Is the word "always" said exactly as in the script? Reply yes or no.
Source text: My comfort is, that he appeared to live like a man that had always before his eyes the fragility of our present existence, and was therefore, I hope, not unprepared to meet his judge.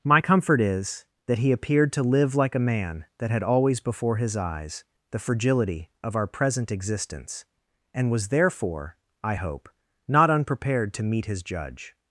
yes